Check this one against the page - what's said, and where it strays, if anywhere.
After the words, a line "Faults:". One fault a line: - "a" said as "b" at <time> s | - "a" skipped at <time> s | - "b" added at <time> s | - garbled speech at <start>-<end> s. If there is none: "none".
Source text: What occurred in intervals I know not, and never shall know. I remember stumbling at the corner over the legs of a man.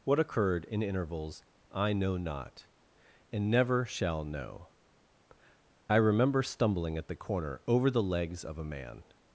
What occurred in intervals I know not, and never shall know. I remember stumbling at the corner over the legs of a man.
Faults:
none